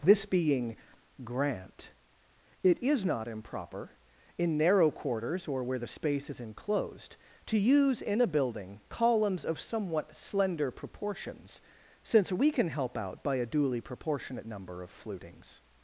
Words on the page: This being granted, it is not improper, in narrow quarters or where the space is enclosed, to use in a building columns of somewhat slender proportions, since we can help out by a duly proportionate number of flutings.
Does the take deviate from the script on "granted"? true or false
true